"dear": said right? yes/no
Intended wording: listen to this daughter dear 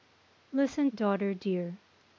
yes